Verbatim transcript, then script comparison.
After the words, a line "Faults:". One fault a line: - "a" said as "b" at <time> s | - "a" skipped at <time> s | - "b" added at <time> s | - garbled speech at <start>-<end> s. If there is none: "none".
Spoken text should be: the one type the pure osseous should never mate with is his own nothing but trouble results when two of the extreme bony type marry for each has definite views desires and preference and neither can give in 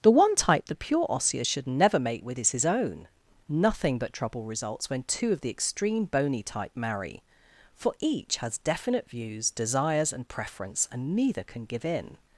the one type the pure osseous should never mate with is his own nothing but trouble results when two of the extreme bony type marry for each has definite views desires and preference and neither can give in
Faults:
none